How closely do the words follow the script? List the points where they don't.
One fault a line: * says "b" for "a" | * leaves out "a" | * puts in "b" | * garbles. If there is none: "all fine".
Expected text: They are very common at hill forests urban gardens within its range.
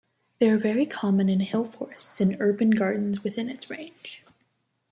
* says "in" for "at"
* puts in "and"